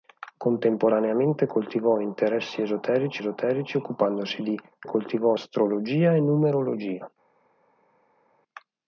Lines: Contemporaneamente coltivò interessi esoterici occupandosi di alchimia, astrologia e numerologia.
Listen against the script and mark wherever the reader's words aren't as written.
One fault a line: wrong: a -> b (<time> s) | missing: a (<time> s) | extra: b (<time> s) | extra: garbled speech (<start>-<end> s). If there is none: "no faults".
extra: esoterici (3.2 s)
wrong: alchimia -> coltivò (4.8 s)